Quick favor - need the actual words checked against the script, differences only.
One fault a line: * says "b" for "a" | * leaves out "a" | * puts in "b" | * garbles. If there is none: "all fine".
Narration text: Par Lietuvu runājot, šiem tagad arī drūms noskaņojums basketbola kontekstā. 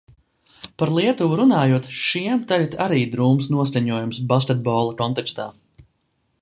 all fine